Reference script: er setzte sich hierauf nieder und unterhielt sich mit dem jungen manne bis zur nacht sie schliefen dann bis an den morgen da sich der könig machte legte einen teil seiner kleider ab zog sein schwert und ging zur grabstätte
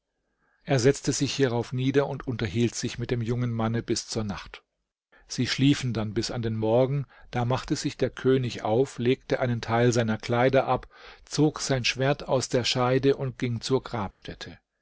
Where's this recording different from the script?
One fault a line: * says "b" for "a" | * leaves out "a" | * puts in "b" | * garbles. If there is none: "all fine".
* puts in "machte"
* says "auf" for "machte"
* puts in "aus der scheide"